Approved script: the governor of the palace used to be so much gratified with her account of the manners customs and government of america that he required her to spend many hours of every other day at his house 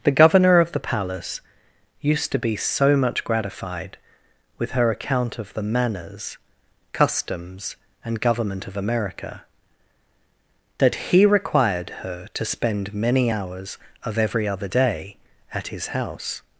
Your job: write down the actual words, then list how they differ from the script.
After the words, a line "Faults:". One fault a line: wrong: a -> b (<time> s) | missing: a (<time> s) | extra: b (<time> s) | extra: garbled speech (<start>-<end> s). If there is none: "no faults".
the governor of the palace used to be so much gratified with her account of the manners customs and government of america that he required her to spend many hours of every other day at his house
Faults:
no faults